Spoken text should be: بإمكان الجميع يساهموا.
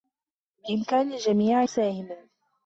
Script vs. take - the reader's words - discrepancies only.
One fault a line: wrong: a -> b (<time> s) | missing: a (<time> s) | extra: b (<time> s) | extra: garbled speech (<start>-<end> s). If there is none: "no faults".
no faults